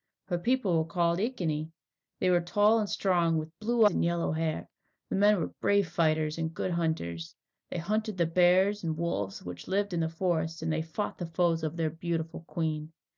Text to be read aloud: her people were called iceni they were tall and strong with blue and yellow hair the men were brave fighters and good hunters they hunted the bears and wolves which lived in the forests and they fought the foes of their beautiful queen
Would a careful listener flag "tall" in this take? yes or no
no